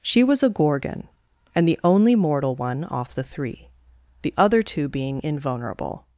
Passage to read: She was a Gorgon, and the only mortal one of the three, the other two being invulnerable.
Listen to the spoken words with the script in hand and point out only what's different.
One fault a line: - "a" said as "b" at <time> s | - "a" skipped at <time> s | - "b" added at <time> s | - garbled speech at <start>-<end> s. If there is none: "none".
- "of" said as "off" at 2.9 s